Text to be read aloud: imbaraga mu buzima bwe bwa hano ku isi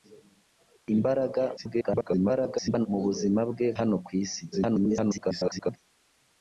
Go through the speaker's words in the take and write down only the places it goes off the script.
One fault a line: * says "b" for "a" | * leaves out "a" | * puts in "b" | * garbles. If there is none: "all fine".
* garbles
* leaves out "bwa"
* garbles